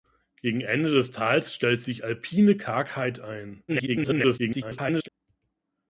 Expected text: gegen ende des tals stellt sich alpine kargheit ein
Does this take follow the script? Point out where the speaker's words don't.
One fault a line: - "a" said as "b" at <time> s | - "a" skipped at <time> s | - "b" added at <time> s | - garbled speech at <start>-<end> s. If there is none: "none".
- garbled speech at 3.7-5.1 s